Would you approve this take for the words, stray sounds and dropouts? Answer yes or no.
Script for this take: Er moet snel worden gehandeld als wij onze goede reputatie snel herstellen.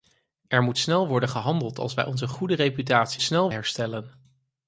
yes